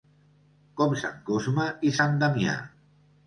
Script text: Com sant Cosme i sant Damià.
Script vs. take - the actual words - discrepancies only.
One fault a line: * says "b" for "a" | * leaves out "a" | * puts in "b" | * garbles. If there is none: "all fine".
all fine